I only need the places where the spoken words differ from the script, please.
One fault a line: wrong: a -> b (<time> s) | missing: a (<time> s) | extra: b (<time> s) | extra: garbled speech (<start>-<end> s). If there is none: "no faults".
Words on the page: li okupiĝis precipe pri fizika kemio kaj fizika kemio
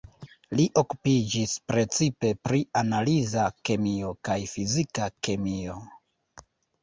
wrong: fizika -> analiza (2.8 s)